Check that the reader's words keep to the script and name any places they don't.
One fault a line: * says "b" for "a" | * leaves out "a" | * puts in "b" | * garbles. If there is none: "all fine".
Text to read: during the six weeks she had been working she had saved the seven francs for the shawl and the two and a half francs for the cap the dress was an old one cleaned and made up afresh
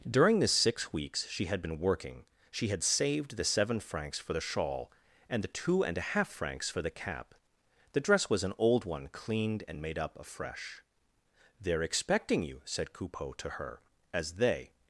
* puts in "they're expecting you said coupeau to her as they"